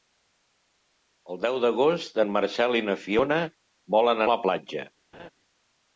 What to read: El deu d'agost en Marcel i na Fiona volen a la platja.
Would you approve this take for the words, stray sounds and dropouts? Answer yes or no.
no